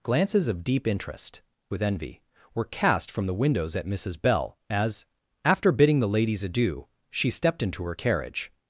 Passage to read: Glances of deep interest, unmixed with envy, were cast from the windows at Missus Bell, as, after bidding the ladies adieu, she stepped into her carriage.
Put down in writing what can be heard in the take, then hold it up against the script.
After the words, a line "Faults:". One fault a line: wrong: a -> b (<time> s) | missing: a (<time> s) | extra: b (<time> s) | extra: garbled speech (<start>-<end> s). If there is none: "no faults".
Glances of deep interest, with envy, were cast from the windows at Missus Bell, as, after bidding the ladies adieu, she stepped into her carriage.
Faults:
missing: unmixed (1.4 s)